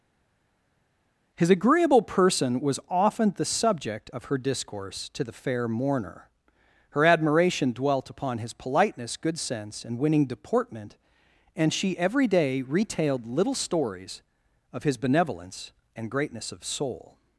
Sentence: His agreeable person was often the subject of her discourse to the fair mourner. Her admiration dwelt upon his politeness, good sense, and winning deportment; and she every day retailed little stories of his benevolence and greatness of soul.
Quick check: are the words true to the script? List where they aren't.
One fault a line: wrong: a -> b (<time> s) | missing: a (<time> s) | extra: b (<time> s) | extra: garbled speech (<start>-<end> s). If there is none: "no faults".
no faults